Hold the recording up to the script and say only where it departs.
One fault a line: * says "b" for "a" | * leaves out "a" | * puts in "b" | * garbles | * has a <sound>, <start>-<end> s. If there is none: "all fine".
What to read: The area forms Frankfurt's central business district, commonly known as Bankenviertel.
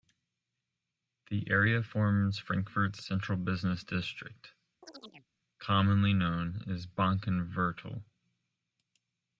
* has a chirp, 4.8-5.3 s